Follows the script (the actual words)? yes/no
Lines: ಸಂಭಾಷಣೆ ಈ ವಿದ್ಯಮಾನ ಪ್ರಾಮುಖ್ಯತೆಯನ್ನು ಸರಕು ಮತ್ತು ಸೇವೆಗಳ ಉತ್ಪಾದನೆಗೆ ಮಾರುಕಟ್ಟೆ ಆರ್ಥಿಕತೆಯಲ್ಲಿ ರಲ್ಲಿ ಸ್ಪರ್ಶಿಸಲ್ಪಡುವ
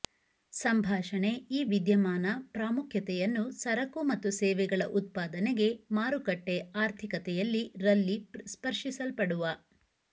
yes